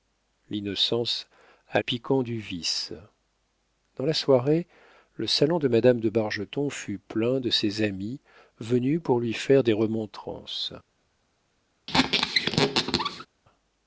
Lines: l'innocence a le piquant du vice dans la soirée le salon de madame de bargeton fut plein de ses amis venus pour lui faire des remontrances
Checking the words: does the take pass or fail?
fail